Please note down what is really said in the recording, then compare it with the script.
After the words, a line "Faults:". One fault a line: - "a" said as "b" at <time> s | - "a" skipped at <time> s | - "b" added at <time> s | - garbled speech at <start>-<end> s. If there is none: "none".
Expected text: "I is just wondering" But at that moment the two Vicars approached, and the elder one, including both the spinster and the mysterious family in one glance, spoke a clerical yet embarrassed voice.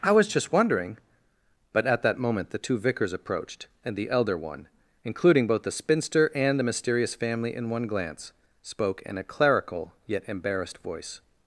"I was just wondering" But at that moment the two Vicars approached, and the elder one, including both the spinster and the mysterious family in one glance, spoke in a clerical yet embarrassed voice.
Faults:
- "is" said as "was" at 0.1 s
- "in" added at 9.0 s